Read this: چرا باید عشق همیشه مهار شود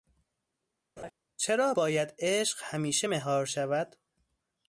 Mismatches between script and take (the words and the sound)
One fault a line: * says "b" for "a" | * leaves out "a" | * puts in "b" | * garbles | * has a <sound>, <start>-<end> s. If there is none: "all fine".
* has a laugh, 1.0-1.1 s